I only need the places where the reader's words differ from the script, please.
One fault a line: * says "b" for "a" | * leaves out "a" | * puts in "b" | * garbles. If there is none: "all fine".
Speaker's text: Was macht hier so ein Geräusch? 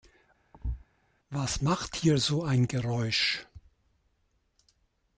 all fine